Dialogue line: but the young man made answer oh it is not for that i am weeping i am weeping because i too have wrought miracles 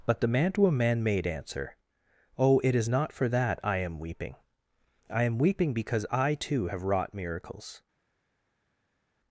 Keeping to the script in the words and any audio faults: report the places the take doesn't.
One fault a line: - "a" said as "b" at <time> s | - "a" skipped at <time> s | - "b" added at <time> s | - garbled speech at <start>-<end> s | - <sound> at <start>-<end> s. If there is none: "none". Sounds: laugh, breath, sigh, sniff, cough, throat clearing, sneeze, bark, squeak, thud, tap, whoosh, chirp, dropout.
- "young" said as "mantua" at 0.3 s